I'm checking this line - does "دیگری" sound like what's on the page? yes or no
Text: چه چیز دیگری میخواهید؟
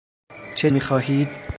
no